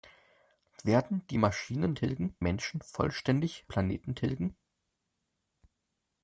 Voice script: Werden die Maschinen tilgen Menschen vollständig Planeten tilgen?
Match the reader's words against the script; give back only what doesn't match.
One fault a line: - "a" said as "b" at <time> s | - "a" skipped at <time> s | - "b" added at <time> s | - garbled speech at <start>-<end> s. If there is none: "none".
none